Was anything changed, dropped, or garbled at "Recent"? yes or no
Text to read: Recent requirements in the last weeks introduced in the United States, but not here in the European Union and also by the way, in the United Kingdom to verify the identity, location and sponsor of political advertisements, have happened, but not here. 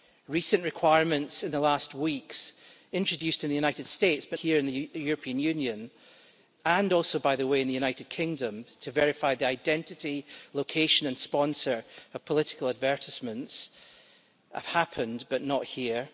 no